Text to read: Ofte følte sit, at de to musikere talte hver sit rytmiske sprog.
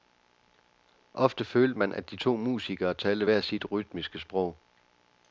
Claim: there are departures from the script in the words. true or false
true